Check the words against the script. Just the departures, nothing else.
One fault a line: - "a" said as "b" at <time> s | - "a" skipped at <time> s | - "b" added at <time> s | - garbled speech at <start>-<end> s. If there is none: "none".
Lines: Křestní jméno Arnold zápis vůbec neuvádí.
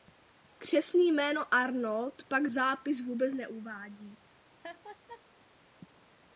- "pak" added at 2.3 s